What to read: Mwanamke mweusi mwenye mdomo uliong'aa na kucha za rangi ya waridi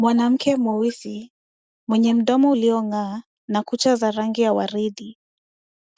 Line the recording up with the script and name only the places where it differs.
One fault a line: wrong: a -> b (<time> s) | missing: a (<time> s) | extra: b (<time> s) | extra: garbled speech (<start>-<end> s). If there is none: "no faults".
no faults